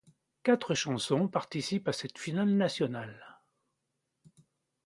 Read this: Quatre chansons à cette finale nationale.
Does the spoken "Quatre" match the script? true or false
true